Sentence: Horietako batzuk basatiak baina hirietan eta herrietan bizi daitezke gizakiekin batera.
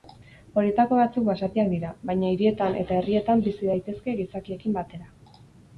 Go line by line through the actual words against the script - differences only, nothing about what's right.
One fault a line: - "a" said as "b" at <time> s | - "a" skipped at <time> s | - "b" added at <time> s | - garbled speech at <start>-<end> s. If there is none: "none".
- "dira" added at 1.8 s